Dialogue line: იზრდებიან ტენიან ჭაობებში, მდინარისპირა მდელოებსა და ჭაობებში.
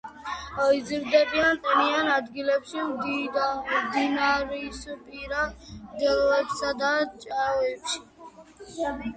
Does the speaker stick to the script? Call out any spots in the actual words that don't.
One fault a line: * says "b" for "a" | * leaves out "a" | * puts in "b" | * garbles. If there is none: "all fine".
* says "ადგილებში" for "ჭაობებში"